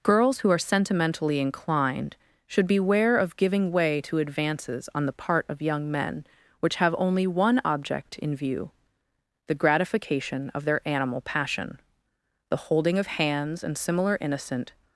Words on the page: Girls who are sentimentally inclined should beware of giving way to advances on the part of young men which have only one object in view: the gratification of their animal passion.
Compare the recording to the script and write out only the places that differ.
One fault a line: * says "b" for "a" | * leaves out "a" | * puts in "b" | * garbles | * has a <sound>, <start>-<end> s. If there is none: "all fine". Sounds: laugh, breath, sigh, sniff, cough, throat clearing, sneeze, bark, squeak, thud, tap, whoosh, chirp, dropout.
* puts in "The holding of hands and similar innocent"